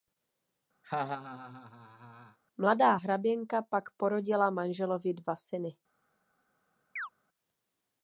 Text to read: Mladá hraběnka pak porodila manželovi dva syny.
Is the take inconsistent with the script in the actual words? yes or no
no